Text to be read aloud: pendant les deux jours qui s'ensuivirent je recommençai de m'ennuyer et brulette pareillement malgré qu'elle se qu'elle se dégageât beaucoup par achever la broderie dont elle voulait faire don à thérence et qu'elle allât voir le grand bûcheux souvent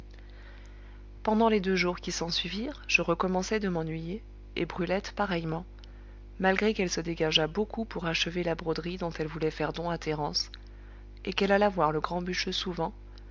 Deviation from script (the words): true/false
true